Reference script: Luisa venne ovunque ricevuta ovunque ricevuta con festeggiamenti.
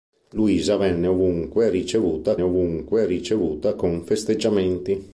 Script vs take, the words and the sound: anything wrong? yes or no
no